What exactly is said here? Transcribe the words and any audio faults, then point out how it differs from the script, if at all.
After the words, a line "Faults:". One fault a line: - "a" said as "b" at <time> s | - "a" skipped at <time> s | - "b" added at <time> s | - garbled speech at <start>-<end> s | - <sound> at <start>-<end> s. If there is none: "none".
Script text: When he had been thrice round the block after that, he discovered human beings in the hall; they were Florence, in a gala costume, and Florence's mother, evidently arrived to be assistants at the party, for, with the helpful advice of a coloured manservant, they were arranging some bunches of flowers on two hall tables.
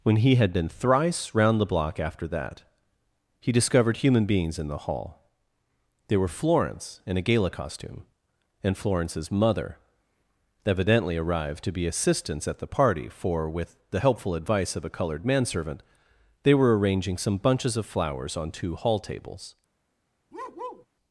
When he had been thrice round the block after that, he discovered human beings in the hall; they were Florence, in a gala costume, and Florence's mother, evidently arrived to be assistants at the party, for, with the helpful advice of a coloured manservant, they were arranging some bunches of flowers on two hall tables.
Faults:
- bark at 20.3-20.9 s